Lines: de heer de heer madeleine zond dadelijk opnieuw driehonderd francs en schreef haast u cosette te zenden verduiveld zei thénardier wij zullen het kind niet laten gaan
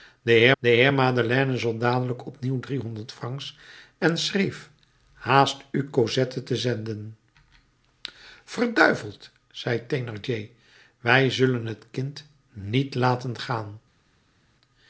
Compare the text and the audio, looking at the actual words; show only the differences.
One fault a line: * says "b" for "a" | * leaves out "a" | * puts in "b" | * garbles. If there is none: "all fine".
all fine